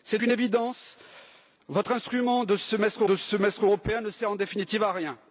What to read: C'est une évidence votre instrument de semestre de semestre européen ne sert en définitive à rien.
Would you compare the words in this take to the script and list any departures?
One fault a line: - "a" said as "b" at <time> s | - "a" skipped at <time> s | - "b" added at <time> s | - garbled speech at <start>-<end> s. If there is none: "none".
none